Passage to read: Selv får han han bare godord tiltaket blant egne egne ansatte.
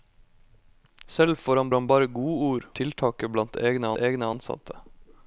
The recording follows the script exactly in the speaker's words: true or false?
true